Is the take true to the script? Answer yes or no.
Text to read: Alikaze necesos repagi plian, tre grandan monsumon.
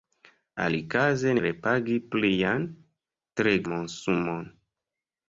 no